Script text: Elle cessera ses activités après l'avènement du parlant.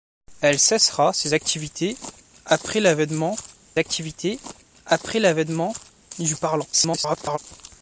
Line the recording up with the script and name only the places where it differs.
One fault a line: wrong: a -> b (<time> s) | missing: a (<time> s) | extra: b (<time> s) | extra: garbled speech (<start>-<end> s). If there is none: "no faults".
extra: activités après l'avènement (3.8 s)
extra: garbled speech (6.7-7.4 s)